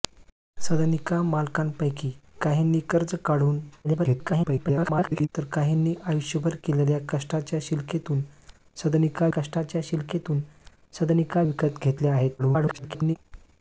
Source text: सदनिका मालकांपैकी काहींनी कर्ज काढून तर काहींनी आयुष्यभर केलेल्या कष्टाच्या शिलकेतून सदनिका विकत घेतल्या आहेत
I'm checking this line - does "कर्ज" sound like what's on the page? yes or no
yes